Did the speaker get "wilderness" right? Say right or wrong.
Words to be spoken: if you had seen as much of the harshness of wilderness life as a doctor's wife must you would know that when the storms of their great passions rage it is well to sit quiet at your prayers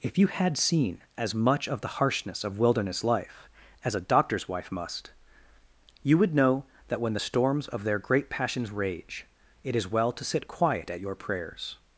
right